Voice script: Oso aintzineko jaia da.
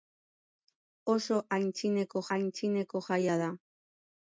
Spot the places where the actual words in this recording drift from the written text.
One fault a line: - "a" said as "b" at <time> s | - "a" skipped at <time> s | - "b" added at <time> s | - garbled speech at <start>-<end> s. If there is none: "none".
- "aintzineko" added at 2.4 s